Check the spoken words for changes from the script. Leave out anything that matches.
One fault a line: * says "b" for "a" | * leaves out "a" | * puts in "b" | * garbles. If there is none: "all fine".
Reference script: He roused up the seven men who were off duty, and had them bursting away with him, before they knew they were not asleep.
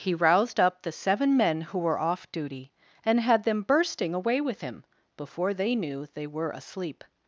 * leaves out "not"